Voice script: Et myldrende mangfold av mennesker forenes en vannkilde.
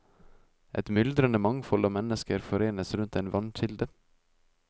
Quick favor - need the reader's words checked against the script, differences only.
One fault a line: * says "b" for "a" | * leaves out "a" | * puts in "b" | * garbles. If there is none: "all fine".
* puts in "rundt"